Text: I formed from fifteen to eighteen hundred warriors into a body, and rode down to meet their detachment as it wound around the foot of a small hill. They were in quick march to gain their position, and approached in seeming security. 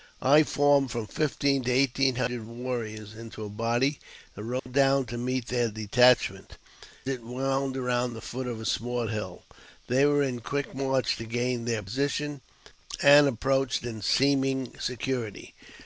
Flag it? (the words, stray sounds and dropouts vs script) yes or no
yes